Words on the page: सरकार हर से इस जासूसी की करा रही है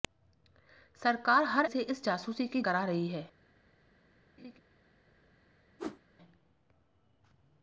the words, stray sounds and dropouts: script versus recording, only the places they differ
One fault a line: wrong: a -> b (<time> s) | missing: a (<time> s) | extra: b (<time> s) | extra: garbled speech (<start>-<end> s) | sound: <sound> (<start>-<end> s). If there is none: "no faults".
sound: laugh (4.4-4.6 s)
sound: whoosh (5.8-6.0 s)